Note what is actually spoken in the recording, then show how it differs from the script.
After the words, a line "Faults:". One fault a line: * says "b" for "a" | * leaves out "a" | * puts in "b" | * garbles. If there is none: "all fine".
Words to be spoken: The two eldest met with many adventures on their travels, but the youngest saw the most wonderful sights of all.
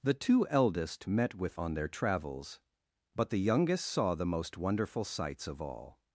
The two eldest met with on their travels, but the youngest saw the most wonderful sights of all.
Faults:
* leaves out "many adventures"